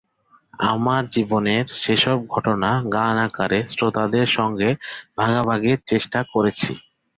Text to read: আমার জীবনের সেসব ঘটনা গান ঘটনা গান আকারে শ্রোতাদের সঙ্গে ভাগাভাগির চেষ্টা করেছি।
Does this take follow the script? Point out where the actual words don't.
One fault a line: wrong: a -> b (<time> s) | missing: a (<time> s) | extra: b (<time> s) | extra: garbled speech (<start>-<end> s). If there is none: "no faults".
missing: ঘটনা গান (3.1 s)